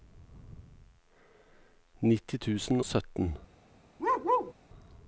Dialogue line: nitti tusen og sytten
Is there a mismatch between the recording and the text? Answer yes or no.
yes